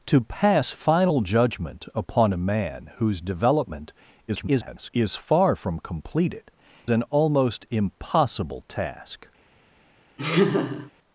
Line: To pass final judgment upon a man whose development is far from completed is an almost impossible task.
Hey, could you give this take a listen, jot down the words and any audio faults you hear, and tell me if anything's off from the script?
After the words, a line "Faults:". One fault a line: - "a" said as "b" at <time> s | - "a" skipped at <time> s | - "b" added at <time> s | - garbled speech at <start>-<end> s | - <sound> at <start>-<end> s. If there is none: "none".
To pass final judgment upon a man whose development [garbled] is far from completed an almost impossible task.
Faults:
- garbled speech at 4.3-4.9 s
- "is" skipped at 6.5 s
- laugh at 10.2-10.9 s